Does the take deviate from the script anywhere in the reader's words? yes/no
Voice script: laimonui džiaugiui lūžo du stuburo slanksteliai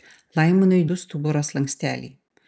yes